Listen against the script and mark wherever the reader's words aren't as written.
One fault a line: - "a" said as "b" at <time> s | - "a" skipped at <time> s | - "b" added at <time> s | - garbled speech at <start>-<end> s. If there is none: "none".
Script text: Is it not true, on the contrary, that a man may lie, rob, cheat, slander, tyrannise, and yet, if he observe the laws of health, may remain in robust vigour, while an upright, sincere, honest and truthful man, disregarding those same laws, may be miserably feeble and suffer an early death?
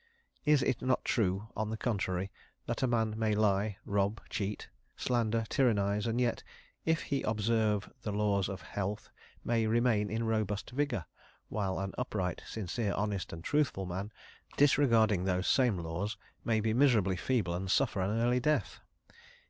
none